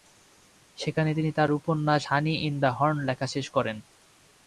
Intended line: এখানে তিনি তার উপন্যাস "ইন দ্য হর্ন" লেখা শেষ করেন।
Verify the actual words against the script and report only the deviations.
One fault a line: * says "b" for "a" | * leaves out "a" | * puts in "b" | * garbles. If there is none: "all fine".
* says "সেখানে" for "এখানে"
* puts in "হানি"